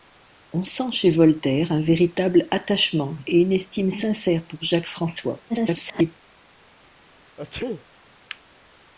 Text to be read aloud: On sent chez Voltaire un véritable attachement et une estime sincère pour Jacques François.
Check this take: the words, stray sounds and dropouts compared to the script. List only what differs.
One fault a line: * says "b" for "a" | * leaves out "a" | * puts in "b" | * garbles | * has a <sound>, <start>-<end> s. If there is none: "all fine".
* garbles
* has a sneeze, 7.4-7.9 s